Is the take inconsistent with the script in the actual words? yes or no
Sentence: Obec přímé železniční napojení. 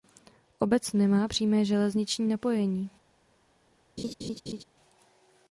yes